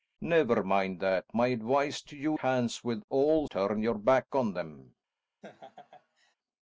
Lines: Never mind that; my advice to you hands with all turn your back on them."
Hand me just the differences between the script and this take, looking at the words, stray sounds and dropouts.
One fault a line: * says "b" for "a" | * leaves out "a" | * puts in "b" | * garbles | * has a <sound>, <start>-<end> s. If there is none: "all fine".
* has a laugh, 5.4-6.4 s